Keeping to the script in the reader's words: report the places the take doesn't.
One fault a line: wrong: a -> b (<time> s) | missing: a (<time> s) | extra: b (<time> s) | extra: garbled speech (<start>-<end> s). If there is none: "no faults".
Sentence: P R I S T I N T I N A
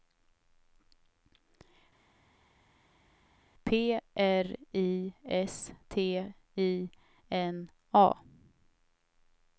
missing: T I N (7.7 s)